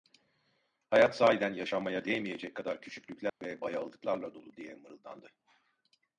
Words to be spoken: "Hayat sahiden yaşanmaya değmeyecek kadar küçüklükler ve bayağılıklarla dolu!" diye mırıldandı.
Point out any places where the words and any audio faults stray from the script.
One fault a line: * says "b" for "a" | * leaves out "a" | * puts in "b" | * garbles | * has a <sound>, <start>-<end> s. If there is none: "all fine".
* has a dropout, 3.3-3.4 s